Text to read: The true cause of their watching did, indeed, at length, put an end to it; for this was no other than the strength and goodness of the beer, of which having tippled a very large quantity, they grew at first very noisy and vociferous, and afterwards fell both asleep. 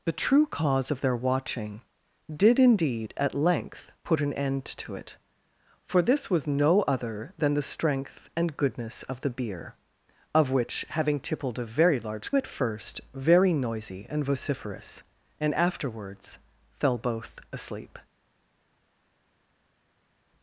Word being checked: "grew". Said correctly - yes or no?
no